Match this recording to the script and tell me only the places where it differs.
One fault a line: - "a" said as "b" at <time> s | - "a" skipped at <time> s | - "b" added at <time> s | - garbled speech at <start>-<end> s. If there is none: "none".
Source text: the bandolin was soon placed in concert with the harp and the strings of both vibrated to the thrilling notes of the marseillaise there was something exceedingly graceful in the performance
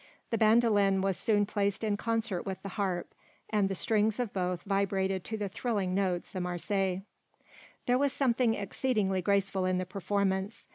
- "of" skipped at 6.3 s